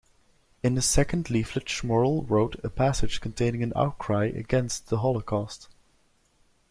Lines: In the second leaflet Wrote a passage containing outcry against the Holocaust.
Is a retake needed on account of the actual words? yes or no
yes